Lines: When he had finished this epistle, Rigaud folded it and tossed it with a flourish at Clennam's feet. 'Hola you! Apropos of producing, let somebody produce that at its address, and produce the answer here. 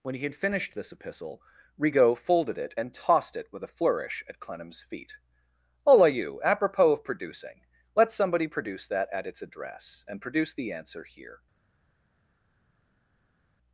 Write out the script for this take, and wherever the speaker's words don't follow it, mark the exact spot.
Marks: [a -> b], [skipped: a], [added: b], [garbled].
When he had finished this epistle, Rigaud folded it and tossed it with a flourish at Clennam's feet. 'Hola you! Apropos of producing, let somebody produce that at its address, and produce the answer here.